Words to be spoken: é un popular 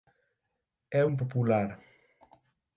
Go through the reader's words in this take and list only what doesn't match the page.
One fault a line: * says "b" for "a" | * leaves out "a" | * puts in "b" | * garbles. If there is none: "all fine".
all fine